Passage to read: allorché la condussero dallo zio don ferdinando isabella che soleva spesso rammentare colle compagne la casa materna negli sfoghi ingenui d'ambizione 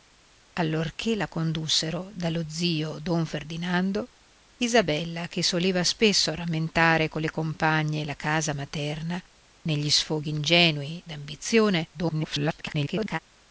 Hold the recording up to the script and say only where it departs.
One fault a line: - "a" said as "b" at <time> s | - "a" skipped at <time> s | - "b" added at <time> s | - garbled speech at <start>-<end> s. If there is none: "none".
- garbled speech at 11.9-13.2 s